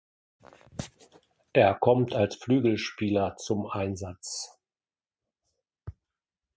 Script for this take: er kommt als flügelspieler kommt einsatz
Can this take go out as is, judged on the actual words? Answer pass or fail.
fail